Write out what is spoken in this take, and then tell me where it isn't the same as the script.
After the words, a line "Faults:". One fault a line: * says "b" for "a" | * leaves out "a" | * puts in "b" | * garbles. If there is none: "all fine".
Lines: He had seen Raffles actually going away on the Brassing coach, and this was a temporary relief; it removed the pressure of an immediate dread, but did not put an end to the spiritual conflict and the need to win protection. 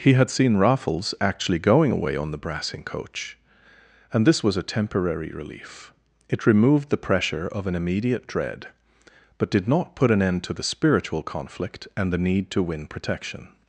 He had seen Raffles actually going away on the Brassing coach, and this was a temporary relief; it removed the pressure of an immediate dread, but did not put an end to the spiritual conflict and the need to win protection.
Faults:
all fine